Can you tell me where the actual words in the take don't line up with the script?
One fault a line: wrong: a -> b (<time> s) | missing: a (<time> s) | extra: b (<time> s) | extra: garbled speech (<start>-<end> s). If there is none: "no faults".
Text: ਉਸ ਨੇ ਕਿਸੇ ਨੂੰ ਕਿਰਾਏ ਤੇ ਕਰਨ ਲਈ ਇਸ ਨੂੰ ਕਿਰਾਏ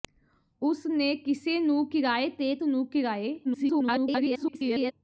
missing: ਕਰਨ ਲਈ ਇਸ (2.5 s)
extra: garbled speech (3.4-4.9 s)